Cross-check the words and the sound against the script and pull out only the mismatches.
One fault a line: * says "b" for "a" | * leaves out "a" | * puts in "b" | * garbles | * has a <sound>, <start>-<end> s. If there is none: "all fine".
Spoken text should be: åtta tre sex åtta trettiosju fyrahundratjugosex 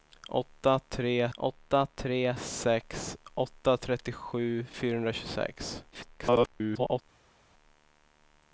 * puts in "åtta tre"
* garbles